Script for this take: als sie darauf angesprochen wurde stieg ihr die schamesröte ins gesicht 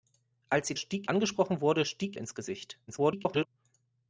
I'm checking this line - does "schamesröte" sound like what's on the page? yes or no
no